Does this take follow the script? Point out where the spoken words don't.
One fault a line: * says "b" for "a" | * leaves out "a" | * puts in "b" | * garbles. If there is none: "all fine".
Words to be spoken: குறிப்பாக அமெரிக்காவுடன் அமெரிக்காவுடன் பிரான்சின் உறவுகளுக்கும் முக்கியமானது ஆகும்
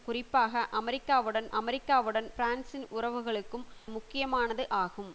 all fine